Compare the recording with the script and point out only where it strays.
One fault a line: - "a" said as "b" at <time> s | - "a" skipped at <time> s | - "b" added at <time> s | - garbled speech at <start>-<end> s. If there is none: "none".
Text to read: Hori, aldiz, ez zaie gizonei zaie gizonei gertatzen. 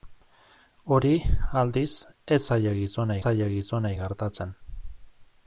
none